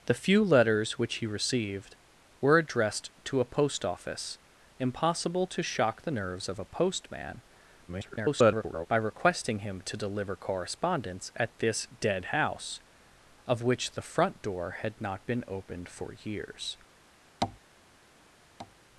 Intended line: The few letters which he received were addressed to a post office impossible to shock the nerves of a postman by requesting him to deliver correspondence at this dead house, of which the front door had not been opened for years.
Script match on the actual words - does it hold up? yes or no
no